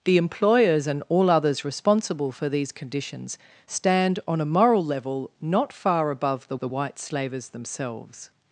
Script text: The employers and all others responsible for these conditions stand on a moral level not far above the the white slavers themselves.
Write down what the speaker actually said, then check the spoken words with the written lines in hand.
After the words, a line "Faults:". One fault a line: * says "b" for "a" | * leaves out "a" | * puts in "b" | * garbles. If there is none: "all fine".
The employers and all others responsible for these conditions stand on a moral level not far above the the white slavers themselves.
Faults:
all fine